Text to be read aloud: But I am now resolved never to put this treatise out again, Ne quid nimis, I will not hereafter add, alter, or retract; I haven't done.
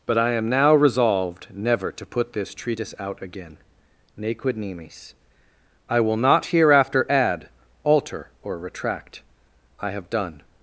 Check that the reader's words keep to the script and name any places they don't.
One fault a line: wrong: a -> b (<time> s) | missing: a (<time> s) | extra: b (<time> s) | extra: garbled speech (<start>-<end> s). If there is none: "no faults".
wrong: haven't -> have (9.9 s)